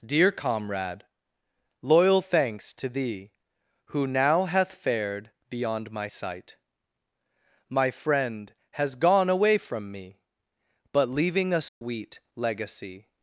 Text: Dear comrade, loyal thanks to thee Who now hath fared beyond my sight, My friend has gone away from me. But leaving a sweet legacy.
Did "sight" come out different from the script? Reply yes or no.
no